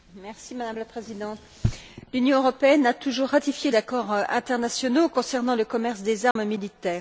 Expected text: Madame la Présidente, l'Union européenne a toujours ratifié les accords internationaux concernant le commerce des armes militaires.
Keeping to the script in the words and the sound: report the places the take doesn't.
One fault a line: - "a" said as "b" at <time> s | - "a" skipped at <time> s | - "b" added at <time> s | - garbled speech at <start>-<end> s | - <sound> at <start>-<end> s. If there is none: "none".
- "les" skipped at 3.7 s
- dropout at 6.3-6.4 s